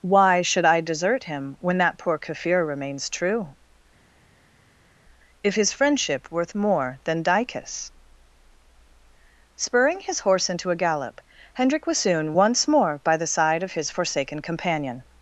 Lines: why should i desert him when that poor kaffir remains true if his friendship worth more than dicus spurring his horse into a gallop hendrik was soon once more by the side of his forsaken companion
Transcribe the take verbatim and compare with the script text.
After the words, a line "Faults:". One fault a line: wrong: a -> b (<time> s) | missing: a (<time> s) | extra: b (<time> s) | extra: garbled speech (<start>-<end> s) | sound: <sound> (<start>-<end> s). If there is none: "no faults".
why should i desert him when that poor kaffir remains true if his friendship worth more than dicus spurring his horse into a gallop hendrik was soon once more by the side of his forsaken companion
Faults:
no faults